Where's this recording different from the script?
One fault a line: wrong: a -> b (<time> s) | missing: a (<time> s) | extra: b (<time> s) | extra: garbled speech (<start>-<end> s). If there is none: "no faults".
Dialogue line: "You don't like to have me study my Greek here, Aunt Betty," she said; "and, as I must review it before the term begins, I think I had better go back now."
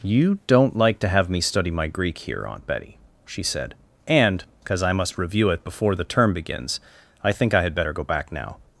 wrong: as -> because (4.6 s)